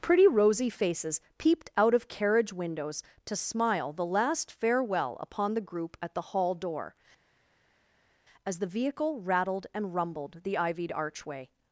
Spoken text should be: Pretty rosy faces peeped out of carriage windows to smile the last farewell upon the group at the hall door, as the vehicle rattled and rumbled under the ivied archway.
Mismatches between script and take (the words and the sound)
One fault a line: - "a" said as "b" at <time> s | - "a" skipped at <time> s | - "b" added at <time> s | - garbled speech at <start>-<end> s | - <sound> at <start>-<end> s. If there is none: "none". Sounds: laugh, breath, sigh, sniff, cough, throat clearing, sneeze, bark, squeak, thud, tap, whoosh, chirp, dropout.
- "under" skipped at 10.4 s